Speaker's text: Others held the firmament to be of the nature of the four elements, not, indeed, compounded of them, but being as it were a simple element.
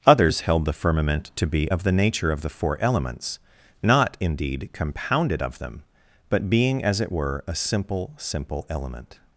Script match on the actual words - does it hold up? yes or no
no